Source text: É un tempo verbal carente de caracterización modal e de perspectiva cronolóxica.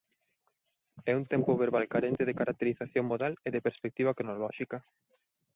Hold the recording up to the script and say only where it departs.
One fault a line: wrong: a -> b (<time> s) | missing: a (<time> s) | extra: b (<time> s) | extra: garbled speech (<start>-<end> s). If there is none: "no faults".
no faults